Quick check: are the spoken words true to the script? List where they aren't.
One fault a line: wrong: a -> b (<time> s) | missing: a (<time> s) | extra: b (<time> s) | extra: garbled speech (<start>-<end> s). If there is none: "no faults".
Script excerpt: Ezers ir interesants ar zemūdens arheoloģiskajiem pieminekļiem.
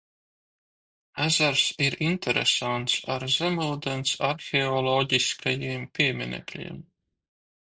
no faults